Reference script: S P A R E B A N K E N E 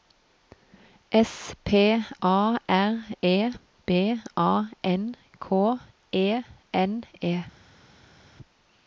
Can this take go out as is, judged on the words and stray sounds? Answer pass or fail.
pass